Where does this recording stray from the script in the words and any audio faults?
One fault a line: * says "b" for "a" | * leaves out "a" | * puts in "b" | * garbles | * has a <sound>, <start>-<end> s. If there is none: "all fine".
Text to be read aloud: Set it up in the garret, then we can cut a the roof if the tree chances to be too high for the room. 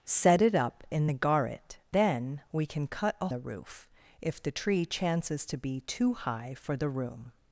all fine